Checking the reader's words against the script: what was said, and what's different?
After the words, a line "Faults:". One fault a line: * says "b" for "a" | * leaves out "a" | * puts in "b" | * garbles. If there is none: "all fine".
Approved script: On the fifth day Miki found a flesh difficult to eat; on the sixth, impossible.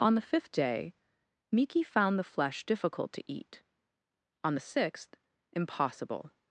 On the fifth day Miki found the flesh difficult to eat; on the sixth, impossible.
Faults:
* says "the" for "a"